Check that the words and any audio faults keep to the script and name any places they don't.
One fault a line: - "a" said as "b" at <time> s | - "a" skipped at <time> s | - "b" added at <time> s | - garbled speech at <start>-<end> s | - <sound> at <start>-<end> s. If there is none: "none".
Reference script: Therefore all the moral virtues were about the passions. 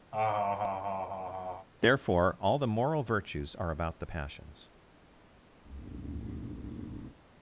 - laugh at 0.1-1.7 s
- "were" said as "are" at 3.6 s
- breath at 5.6-7.2 s